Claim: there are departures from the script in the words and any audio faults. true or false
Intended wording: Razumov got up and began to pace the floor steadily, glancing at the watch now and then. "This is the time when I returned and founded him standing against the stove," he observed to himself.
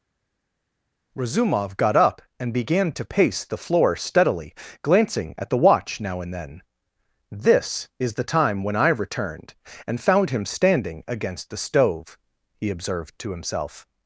true